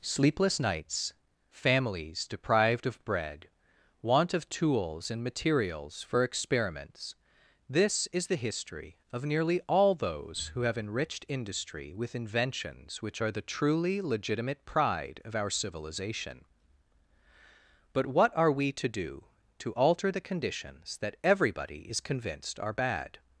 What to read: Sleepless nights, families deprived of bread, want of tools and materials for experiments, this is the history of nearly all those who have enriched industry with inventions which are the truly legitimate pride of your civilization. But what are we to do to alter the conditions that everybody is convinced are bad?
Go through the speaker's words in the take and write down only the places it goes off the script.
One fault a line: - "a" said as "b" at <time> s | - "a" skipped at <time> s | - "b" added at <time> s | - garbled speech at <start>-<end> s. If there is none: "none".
- "your" said as "our" at 15.3 s